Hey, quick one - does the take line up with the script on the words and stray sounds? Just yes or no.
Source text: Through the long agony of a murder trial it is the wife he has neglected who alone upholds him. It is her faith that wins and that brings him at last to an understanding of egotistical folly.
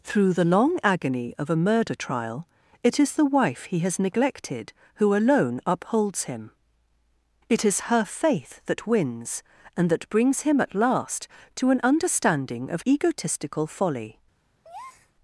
no